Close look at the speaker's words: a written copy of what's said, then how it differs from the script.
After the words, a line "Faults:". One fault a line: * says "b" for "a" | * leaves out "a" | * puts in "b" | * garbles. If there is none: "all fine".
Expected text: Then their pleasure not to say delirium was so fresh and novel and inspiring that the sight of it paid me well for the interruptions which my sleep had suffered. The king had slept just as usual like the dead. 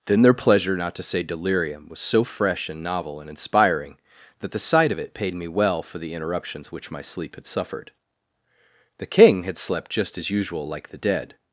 Then their pleasure not to say delirium was so fresh and novel and inspiring that the sight of it paid me well for the interruptions which my sleep had suffered. The king had slept just as usual like the dead.
Faults:
all fine